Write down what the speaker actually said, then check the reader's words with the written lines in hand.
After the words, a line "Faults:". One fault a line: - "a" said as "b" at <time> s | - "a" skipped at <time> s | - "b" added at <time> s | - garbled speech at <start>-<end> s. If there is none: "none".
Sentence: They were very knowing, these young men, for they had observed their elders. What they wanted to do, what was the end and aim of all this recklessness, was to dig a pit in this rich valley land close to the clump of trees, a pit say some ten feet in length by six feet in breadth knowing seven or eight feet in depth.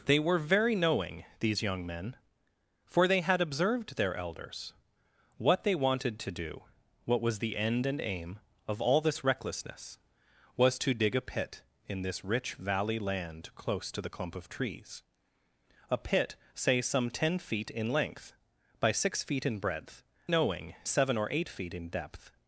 They were very knowing, these young men, for they had observed their elders. What they wanted to do, what was the end and aim of all this recklessness, was to dig a pit in this rich valley land close to the clump of trees, a pit say some ten feet in length by six feet in breadth knowing seven or eight feet in depth.
Faults:
none